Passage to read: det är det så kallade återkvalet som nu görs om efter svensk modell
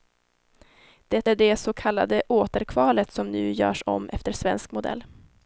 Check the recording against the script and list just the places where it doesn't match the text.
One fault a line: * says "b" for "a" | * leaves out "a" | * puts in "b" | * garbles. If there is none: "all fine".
all fine